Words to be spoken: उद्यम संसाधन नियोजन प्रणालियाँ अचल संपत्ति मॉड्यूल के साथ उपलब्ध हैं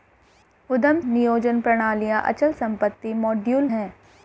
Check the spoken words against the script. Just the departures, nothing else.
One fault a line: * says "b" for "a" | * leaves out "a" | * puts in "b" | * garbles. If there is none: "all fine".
* leaves out "संसाधन"
* leaves out "के साथ उपलब्ध"